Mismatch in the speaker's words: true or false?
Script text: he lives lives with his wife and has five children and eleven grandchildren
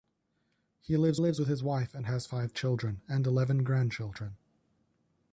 false